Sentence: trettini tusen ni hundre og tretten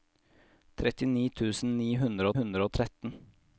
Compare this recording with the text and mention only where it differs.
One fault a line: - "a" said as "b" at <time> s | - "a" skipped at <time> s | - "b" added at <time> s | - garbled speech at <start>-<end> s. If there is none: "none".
- "hundre" added at 2.4 s